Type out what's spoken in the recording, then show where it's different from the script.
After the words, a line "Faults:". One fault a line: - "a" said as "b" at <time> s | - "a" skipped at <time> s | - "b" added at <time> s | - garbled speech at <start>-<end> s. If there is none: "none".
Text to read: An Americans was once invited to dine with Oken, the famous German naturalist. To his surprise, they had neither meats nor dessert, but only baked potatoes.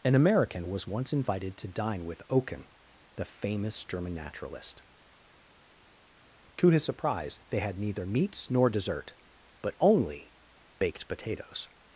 An American was once invited to dine with Oken, the famous German naturalist. To his surprise, they had neither meats nor dessert, but only baked potatoes.
Faults:
- "Americans" said as "American" at 0.1 s